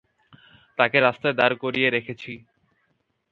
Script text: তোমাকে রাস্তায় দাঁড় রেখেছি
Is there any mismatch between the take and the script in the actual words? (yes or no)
yes